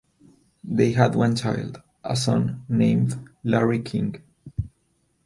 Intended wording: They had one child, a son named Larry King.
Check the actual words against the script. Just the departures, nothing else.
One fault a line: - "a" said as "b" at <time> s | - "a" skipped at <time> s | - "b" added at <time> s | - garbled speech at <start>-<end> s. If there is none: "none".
none